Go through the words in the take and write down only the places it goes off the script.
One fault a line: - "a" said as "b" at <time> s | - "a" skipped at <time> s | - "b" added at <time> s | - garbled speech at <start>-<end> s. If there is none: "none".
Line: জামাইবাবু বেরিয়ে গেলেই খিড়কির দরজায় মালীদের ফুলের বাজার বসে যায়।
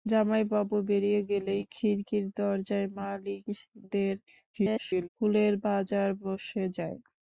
- garbled speech at 4.5-5.1 s